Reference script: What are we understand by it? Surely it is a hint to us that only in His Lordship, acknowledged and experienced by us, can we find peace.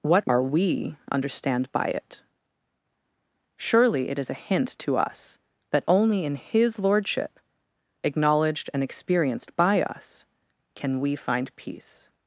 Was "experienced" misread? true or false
false